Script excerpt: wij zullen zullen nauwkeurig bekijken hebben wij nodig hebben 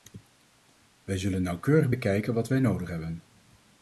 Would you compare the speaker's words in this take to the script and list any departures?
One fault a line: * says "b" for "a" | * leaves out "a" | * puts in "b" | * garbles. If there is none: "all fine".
* leaves out "zullen"
* says "wat" for "hebben"